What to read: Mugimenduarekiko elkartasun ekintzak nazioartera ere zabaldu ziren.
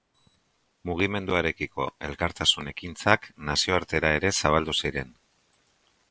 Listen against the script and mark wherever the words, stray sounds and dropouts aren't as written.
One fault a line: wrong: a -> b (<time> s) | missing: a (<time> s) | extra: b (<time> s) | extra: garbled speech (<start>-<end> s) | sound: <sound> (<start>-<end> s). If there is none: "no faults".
no faults